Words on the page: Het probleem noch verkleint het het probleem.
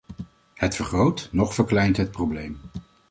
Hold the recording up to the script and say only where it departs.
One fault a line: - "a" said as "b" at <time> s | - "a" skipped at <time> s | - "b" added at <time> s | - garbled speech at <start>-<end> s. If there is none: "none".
- "probleem" said as "vergroot" at 0.8 s
- "het" skipped at 2.1 s